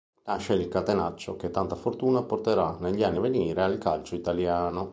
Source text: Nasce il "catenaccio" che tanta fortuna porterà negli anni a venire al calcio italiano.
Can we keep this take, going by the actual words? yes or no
yes